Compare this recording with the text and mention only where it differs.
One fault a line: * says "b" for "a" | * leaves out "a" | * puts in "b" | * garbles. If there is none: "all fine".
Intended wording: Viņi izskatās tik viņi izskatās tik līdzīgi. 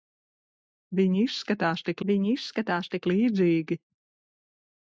all fine